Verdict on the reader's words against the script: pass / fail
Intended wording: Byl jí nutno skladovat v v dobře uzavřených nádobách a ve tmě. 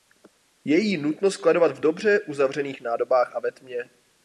fail